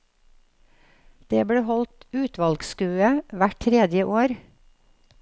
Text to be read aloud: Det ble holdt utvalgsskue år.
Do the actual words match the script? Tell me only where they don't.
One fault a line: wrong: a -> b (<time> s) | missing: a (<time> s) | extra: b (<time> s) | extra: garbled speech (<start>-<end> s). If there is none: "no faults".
extra: hvert tredje (3.4 s)